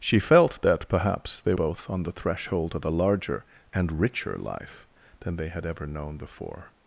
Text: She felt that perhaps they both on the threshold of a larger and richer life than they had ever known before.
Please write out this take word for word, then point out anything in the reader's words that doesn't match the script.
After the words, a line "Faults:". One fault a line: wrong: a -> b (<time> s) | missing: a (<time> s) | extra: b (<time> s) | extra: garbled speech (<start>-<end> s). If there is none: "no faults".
She felt that perhaps they both on the threshold of a larger and richer life than they had ever known before.
Faults:
no faults